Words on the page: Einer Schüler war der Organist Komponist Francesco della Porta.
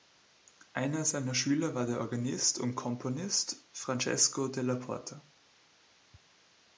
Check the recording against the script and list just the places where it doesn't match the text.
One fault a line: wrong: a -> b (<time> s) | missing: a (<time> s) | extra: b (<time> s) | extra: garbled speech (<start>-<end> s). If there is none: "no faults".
extra: seiner (1.1 s)
extra: und (2.6 s)